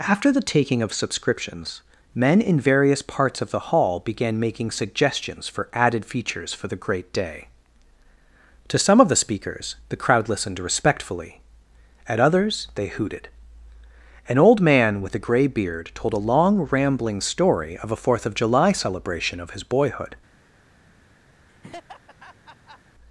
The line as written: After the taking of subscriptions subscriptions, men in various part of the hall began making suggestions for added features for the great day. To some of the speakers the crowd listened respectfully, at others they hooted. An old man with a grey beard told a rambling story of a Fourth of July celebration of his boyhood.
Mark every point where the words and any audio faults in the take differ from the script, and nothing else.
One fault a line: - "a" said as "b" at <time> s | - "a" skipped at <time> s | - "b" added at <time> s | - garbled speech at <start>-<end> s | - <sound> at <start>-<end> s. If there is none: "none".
- "subscriptions" skipped at 1.8 s
- "part" said as "parts" at 3.0 s
- "long" added at 16.3 s
- laugh at 21.5-22.8 s